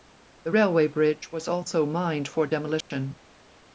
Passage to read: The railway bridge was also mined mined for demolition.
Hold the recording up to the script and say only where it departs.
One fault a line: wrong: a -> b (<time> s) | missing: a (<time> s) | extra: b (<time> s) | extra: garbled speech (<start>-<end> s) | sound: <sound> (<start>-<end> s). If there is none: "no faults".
missing: mined (2.3 s)
sound: dropout (2.8-2.9 s)